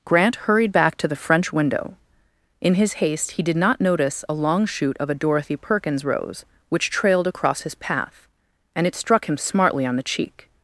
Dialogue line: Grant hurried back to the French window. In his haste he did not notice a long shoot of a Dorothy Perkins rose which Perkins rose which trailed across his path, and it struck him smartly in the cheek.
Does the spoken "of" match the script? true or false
true